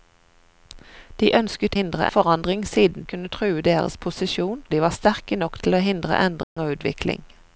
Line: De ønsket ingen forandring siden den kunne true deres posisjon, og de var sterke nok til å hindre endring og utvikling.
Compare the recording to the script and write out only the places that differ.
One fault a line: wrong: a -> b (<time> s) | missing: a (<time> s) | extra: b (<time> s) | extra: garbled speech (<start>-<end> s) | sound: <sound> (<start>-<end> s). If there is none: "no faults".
wrong: ingen -> hindre (1.8 s)
missing: den (3.0 s)
missing: og (4.6 s)
sound: dropout (6.4-6.6 s)